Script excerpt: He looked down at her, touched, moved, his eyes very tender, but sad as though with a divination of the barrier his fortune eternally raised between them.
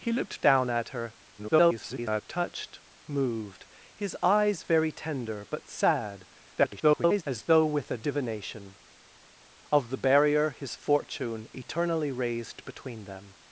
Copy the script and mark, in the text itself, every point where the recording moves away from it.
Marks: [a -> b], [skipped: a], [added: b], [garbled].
He looked down at her, [garbled] touched, moved, his eyes very tender, but sad [garbled] as though with a divination of the barrier his fortune eternally raised between them.